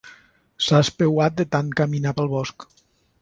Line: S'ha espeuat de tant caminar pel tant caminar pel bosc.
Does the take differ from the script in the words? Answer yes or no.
yes